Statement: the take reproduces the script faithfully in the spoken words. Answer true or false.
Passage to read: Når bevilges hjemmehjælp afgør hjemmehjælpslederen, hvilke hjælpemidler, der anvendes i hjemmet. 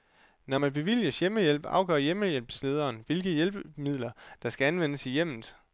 false